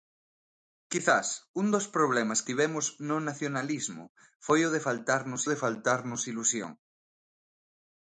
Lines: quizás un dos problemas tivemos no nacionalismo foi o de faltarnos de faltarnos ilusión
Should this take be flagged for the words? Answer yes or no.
no